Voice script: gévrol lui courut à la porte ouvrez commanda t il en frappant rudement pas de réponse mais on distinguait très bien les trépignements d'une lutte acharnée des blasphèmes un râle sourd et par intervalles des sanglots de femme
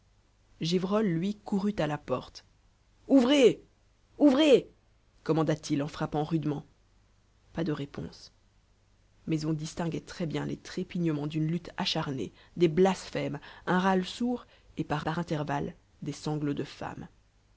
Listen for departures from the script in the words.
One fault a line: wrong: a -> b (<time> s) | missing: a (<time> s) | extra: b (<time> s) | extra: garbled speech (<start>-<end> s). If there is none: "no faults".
extra: ouvrez (4.2 s)
extra: par (15.0 s)